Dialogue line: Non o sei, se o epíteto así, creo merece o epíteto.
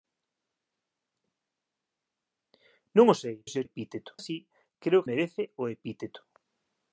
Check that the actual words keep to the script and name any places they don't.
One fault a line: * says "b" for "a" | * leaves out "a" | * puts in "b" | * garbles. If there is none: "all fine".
all fine